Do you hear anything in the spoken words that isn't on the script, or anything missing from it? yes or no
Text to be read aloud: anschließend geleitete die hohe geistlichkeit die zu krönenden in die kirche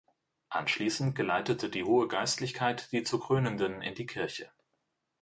no